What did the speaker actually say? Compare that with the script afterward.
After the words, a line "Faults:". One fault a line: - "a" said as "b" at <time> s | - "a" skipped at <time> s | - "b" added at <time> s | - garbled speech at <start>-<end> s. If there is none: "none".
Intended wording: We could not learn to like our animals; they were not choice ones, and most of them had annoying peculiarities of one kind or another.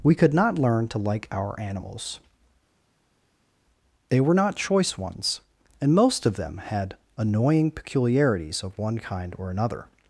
We could not learn to like our animals; they were not choice ones, and most of them had annoying peculiarities of one kind or another.
Faults:
none